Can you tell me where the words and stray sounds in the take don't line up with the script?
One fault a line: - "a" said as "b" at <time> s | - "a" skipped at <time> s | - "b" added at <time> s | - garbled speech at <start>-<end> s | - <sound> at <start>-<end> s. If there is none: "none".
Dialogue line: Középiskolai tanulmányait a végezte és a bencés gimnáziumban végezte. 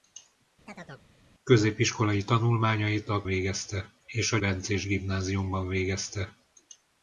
- chirp at 0.7-1.1 s